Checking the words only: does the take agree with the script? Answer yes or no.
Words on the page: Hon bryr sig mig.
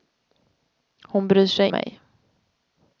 yes